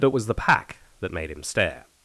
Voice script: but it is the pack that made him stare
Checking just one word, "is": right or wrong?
wrong